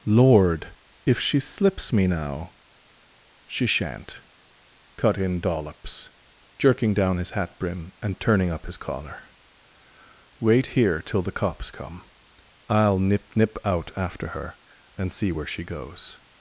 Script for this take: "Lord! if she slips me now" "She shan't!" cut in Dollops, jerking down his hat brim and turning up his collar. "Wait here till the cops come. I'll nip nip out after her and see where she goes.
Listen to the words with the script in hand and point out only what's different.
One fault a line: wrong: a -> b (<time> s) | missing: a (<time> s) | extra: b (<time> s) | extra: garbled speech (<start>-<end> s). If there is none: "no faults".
no faults